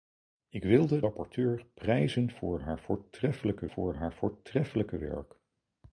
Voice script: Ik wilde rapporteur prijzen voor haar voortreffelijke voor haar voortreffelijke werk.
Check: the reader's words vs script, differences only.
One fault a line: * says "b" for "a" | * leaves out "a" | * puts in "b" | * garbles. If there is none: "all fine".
all fine